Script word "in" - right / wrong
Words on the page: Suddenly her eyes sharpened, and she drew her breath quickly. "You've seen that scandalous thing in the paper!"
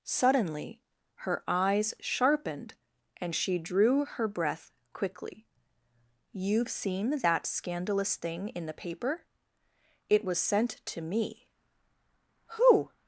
right